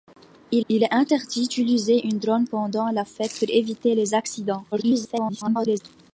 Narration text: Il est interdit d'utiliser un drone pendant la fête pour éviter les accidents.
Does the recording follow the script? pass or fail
fail